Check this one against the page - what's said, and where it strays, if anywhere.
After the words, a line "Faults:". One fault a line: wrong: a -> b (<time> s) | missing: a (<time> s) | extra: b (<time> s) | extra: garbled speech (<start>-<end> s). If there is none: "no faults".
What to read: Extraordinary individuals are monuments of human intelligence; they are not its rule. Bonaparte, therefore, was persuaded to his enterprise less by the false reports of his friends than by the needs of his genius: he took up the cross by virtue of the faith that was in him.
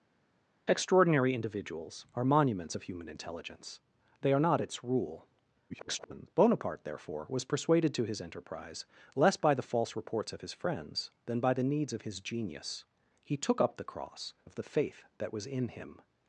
Extraordinary individuals are monuments of human intelligence; they are not its rule. [garbled] Bonaparte, therefore, was persuaded to his enterprise less by the false reports of his friends than by the needs of his genius: he took up the cross of the faith that was in him.
Faults:
extra: garbled speech (5.7-6.3 s)
missing: by virtue (14.3 s)